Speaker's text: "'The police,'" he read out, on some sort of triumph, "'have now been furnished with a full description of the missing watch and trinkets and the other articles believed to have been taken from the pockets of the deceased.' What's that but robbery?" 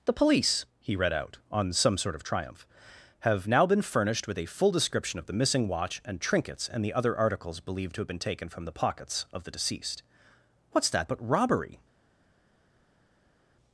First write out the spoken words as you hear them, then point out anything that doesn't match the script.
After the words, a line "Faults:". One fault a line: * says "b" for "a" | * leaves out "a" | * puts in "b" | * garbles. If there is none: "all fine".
"'The police,'" he read out, on some sort of triumph, "'have now been furnished with a full description of the missing watch and trinkets and the other articles believed to have been taken from the pockets of the deceased.' What's that but robbery?"
Faults:
all fine